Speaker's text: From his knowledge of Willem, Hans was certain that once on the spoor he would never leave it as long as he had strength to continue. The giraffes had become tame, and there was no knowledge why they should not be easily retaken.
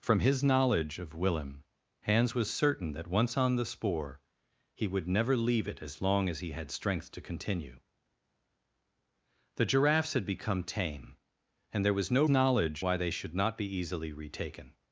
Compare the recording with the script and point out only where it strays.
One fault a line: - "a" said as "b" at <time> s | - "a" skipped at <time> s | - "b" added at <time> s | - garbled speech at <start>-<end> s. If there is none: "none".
none